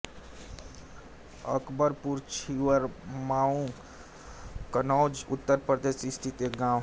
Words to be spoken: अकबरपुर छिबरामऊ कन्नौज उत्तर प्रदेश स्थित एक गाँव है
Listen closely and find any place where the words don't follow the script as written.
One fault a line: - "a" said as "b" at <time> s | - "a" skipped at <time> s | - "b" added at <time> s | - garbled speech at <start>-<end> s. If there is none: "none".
none